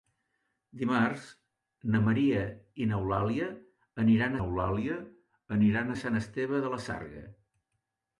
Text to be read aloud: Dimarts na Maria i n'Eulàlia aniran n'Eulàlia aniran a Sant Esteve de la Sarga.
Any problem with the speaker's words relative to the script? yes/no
no